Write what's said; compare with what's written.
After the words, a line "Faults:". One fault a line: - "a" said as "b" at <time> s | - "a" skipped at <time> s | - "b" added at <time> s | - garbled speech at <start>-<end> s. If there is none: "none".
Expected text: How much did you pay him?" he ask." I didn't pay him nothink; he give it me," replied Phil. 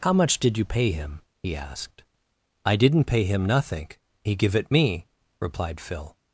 How much did you pay him?" he asked." I didn't pay him nothink; he give it me," replied Phil.
Faults:
- "ask" said as "asked" at 1.6 s